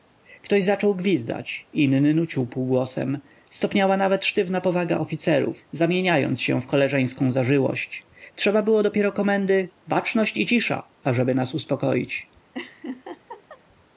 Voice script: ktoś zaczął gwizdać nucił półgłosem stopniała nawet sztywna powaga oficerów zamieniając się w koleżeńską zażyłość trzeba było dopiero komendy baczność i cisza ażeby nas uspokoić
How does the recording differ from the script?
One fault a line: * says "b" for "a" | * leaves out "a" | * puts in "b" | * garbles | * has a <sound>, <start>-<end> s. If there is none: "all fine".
* puts in "inny"
* has a laugh, 12.5-13.6 s